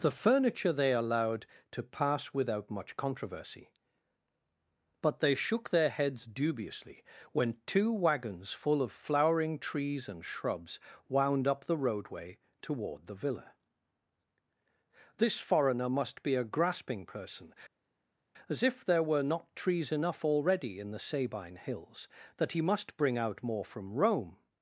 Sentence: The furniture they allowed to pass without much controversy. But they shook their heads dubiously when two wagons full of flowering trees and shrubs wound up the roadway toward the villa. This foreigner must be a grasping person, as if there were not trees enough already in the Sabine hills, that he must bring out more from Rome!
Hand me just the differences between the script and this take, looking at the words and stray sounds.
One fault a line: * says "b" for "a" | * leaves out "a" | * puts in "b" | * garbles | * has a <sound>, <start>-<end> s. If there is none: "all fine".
all fine